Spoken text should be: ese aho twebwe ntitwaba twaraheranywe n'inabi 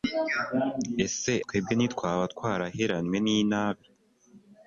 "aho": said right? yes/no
no